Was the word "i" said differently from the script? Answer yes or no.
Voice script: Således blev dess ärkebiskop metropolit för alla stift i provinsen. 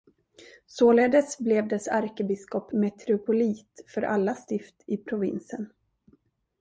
no